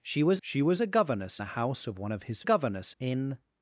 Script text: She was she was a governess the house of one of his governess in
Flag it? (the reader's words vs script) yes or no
no